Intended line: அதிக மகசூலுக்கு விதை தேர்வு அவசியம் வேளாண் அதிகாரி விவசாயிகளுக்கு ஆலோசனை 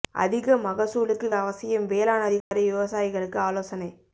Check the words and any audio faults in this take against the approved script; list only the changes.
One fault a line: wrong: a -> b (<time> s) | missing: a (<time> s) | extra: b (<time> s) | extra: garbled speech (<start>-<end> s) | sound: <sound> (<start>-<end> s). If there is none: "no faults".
missing: விதை தேர்வு (1.3 s)
sound: dropout (2.4-2.5 s)